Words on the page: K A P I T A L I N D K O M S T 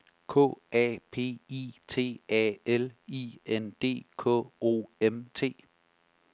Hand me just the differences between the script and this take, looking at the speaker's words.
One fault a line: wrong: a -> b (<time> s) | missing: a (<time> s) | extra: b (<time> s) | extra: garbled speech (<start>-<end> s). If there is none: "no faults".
missing: S (5.3 s)